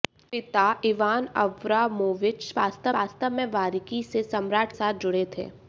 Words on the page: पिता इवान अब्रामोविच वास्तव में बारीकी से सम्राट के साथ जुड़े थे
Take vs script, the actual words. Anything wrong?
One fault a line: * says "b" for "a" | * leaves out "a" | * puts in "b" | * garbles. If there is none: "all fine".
* puts in "वास्तव"
* leaves out "के"